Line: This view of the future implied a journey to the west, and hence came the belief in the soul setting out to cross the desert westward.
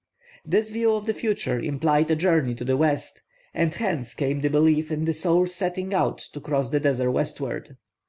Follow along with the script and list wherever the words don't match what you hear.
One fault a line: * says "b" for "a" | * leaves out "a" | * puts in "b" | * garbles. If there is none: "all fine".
all fine